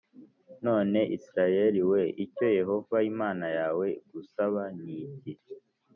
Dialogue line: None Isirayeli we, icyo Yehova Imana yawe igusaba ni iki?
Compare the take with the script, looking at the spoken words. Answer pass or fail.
pass